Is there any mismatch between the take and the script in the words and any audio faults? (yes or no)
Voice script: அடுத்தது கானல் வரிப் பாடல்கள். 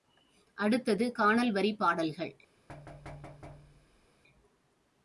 yes